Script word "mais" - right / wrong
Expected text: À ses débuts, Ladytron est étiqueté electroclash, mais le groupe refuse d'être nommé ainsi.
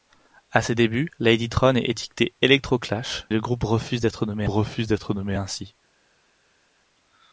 wrong